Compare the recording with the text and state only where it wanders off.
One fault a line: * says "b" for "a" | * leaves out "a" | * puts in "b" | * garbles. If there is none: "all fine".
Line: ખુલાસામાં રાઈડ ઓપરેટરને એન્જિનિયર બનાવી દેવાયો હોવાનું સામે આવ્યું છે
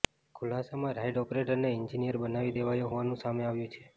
all fine